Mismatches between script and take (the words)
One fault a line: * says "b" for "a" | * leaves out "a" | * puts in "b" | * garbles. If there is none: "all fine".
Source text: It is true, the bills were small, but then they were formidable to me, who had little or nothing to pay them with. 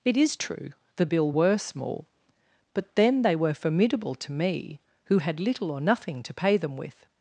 * says "bill" for "bills"